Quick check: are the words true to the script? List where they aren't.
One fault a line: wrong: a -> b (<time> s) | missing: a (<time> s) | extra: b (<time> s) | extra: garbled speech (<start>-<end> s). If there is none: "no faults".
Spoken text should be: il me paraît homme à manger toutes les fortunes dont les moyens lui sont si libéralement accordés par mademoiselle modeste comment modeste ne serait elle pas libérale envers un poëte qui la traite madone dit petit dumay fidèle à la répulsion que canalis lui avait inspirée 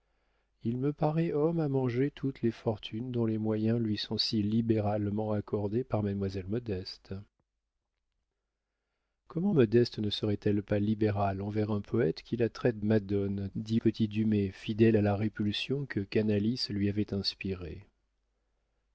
no faults